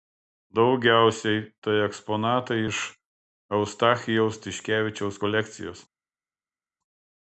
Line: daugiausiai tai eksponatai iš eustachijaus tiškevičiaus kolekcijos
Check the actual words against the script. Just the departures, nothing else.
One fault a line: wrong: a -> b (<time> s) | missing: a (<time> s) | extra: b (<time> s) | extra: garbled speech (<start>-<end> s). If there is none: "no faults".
no faults